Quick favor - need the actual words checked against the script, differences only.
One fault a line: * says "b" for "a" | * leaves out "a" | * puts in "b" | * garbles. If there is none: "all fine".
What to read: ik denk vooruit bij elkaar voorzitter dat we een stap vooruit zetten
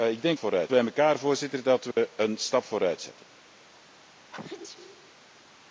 all fine